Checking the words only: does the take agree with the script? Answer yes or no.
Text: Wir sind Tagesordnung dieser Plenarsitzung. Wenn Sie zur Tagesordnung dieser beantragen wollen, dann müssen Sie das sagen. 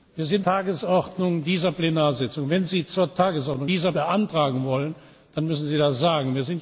yes